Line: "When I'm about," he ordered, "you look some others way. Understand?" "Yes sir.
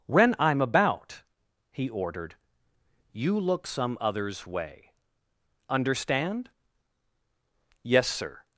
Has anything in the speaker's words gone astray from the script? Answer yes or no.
no